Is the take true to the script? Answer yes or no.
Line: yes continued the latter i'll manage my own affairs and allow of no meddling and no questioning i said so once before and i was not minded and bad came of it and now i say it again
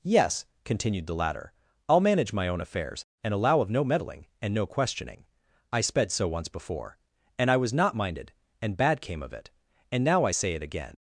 no